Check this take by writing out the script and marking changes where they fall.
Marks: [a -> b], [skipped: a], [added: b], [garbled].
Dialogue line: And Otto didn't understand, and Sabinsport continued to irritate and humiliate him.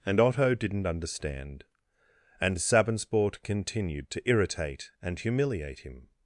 And Otto didn't understand, and Sabinsport continued to irritate and humiliate him.